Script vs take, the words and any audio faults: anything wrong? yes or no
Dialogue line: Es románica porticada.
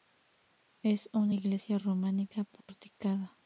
yes